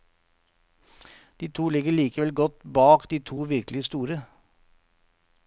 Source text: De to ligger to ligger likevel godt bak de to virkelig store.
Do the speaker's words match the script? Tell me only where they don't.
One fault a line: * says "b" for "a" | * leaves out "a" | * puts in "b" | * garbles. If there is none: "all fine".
* leaves out "to ligger"